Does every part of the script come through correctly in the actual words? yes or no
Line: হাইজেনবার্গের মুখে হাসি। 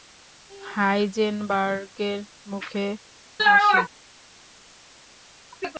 yes